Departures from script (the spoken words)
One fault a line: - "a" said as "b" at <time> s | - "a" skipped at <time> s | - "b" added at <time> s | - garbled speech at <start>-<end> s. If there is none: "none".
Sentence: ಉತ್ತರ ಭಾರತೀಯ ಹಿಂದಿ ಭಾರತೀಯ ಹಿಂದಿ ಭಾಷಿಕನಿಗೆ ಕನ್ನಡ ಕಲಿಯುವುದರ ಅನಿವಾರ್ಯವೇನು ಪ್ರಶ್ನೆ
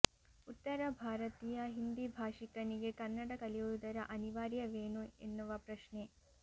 - "ಭಾರತೀಯ ಹಿಂದಿ" skipped at 2.0 s
- "ಎನ್ನುವ" added at 5.2 s